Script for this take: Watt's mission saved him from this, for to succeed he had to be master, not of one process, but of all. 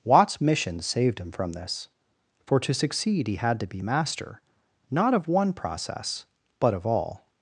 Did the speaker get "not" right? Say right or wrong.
right